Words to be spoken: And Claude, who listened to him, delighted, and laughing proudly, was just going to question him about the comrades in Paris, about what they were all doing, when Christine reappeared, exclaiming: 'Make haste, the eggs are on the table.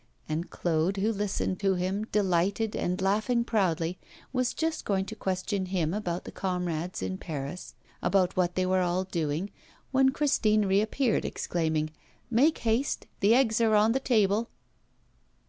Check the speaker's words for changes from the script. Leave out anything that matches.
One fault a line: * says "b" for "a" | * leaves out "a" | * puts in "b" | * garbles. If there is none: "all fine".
all fine